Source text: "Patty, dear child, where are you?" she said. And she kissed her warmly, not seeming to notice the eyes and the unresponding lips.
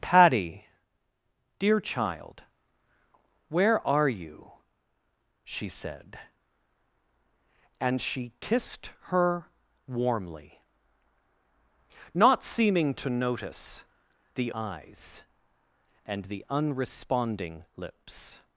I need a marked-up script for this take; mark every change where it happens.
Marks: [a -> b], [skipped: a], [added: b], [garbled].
"Patty, dear child, where are you?" she said. And she kissed her warmly, not seeming to notice the eyes and the unresponding lips.